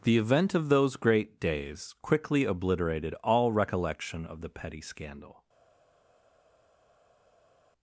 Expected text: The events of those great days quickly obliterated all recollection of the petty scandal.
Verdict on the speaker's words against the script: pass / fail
fail